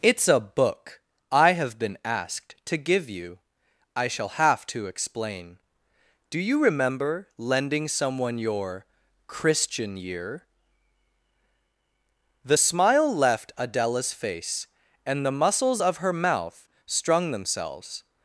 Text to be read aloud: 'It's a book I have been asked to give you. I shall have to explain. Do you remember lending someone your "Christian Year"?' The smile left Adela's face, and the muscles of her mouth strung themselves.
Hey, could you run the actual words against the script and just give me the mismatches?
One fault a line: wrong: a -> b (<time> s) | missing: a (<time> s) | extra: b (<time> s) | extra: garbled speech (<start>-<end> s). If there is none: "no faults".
no faults